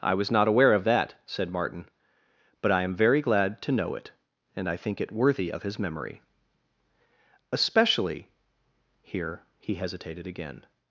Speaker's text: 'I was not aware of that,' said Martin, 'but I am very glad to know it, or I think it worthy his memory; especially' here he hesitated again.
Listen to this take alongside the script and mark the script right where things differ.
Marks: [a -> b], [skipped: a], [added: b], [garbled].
'I was not aware of that,' said Martin, 'but I am very glad to know it, [or -> and] I think it worthy [added: of] his memory; especially' here he hesitated again.